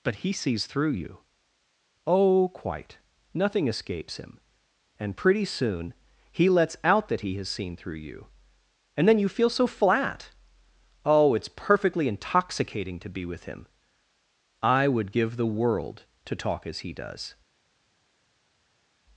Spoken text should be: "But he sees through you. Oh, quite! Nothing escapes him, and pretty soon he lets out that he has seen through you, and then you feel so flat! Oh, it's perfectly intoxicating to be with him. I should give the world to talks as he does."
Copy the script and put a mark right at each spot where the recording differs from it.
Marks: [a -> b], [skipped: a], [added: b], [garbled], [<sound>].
"But he sees through you. Oh, quite! Nothing escapes him, and pretty soon he lets out that he has seen through you, and then you feel so flat! Oh, it's perfectly intoxicating to be with him. I [should -> would] give the world to [talks -> talk] as he does."